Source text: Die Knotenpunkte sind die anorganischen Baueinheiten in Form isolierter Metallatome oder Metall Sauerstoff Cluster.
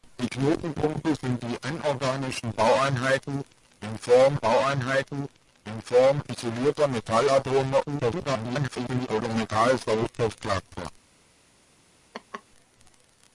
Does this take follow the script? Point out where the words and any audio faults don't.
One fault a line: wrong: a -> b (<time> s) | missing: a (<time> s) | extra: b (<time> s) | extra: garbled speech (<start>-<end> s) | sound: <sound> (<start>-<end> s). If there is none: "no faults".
extra: Baueinheiten in Form (4.4 s)
extra: garbled speech (7.8-9.1 s)
sound: laugh (12.1-12.4 s)